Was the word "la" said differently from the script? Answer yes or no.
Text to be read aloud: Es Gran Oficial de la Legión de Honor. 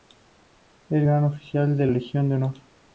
yes